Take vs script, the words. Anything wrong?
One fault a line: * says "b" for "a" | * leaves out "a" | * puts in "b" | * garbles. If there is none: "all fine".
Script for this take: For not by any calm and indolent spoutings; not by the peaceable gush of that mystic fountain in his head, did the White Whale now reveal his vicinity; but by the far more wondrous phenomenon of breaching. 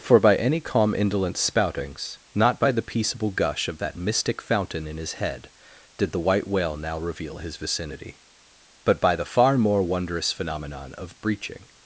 * leaves out "not"
* leaves out "and"